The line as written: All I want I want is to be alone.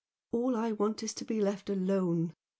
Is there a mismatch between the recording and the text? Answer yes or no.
yes